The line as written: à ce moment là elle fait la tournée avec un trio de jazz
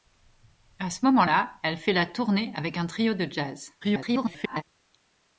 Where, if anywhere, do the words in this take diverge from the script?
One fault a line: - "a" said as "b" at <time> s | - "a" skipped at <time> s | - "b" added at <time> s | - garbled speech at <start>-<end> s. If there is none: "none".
- garbled speech at 3.8-4.6 s